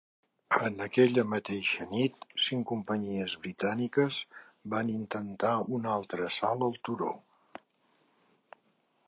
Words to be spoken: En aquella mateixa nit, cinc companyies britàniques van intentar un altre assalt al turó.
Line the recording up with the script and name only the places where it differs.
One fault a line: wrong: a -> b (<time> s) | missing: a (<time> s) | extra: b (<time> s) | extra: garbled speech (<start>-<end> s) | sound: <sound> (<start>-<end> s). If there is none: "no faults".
no faults